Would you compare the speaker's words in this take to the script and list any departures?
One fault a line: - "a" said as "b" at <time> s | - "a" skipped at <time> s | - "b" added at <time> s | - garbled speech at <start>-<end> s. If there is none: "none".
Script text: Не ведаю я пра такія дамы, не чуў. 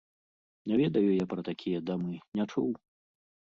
none